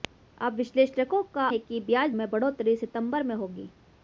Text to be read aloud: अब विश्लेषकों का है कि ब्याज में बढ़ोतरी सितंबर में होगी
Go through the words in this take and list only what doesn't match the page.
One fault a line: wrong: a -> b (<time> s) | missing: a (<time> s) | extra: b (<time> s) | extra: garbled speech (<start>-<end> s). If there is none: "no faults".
no faults